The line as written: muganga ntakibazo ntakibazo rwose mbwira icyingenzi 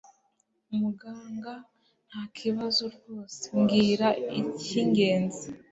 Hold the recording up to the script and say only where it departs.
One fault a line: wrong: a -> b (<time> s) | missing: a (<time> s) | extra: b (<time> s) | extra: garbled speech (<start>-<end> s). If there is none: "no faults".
missing: ntakibazo (2.8 s)